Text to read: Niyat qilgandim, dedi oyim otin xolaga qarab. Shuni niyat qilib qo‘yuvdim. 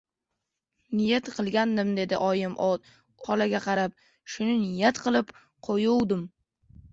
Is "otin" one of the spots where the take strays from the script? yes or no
yes